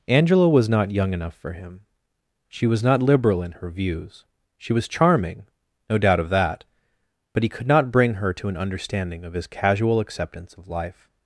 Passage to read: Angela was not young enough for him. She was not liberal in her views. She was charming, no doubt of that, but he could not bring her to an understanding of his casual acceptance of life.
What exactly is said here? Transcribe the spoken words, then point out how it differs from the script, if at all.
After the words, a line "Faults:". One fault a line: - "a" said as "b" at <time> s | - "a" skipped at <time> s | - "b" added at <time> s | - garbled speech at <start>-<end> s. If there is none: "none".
Angela was not young enough for him. She was not liberal in her views. She was charming, no doubt of that, but he could not bring her to an understanding of his casual acceptance of life.
Faults:
none